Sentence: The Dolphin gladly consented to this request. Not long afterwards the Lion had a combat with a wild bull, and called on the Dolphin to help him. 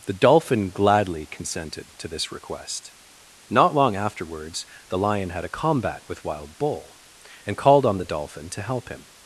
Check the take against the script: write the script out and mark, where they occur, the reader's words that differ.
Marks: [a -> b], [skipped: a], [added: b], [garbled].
The Dolphin gladly consented to this request. Not long afterwards the Lion had a combat with [skipped: a] wild bull, and called on the Dolphin to help him.